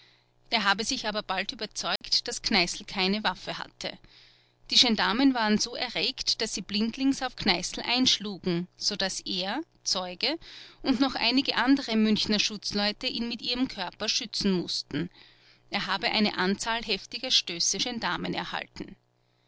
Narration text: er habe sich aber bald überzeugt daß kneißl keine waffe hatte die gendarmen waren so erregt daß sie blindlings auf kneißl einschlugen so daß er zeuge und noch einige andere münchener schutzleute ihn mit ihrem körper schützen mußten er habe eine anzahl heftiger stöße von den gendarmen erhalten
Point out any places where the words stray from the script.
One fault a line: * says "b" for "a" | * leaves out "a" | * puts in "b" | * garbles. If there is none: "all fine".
* leaves out "von den"